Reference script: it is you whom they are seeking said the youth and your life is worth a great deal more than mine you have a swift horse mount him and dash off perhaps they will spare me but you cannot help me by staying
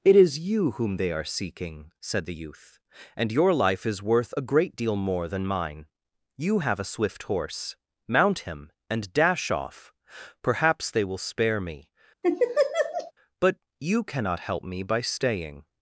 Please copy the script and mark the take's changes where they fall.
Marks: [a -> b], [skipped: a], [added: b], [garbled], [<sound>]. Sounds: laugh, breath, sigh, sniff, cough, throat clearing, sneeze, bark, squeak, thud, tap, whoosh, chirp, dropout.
it is you whom they are seeking said the youth and your life is worth a great deal more than mine you have a swift horse mount him and dash off perhaps they will spare me [laugh] but you cannot help me by staying